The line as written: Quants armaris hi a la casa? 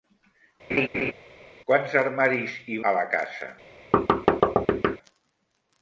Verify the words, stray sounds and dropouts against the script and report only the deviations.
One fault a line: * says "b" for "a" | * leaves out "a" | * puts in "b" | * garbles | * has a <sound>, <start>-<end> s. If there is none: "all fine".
* has a laugh, 0.7-1.1 s
* has a thud, 3.9-5.0 s